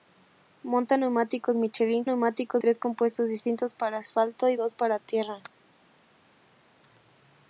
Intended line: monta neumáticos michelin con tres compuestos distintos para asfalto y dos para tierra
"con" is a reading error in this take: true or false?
true